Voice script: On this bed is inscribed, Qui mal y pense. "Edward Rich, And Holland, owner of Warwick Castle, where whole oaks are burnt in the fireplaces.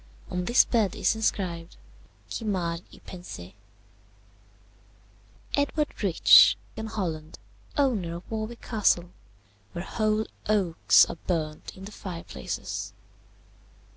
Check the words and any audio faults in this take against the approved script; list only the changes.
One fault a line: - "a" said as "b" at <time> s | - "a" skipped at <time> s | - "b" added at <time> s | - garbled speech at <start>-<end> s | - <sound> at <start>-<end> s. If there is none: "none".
none